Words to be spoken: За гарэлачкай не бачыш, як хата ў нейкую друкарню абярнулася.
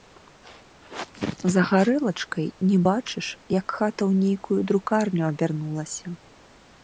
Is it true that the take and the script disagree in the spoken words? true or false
false